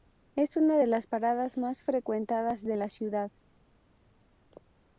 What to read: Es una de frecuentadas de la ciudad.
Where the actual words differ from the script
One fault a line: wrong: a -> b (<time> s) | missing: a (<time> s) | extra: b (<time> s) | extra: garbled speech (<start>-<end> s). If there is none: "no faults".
extra: las paradas más (0.9 s)